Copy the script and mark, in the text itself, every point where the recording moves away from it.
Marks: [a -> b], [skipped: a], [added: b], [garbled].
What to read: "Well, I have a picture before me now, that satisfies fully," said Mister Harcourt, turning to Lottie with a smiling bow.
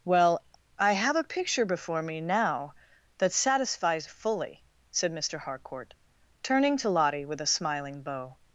"Well, I have a picture before me now, that satisfies fully," said Mister Harcourt, turning to Lottie with a smiling bow.